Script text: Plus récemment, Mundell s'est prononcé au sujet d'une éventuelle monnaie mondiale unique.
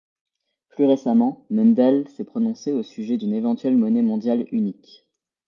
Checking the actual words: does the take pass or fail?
pass